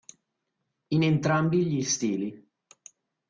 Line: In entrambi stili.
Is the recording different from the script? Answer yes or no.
yes